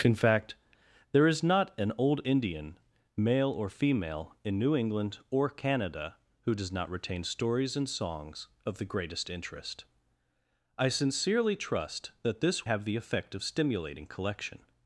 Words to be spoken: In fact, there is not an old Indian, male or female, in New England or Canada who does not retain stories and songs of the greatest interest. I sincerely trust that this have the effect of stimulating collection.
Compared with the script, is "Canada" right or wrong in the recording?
right